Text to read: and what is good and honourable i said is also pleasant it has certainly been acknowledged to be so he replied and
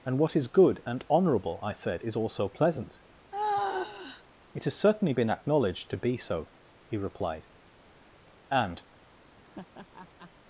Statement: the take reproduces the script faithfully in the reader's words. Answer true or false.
true